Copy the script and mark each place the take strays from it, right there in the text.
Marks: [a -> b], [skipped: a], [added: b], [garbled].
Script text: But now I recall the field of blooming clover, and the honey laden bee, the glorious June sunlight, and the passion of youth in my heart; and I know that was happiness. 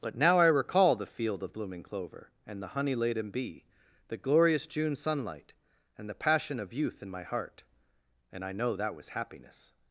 But now I recall the field of blooming clover, and the honey laden bee, the glorious June sunlight, and the passion of youth in my heart; and I know that was happiness.